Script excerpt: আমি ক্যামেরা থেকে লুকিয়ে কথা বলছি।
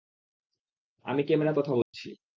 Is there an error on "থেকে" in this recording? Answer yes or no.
yes